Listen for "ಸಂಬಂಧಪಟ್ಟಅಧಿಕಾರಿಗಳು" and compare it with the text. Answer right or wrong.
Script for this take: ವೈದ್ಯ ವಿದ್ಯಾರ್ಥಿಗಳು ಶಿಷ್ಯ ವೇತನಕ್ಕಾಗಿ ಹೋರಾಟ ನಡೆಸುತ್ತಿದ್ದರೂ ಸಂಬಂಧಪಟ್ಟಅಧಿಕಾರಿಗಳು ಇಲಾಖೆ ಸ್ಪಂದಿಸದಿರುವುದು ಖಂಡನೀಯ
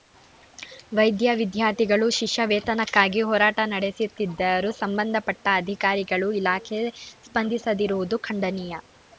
right